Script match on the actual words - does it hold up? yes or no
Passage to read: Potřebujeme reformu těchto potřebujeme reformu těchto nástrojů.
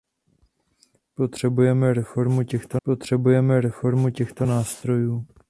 yes